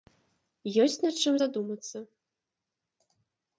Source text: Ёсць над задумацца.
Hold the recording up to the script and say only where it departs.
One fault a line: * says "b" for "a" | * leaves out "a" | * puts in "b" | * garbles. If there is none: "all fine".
* puts in "чым"